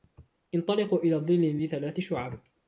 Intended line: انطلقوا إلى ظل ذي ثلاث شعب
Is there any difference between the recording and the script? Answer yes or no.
no